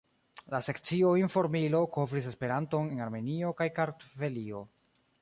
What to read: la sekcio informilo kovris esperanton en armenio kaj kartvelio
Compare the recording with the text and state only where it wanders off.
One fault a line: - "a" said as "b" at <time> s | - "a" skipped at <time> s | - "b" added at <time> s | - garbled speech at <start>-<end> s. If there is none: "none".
none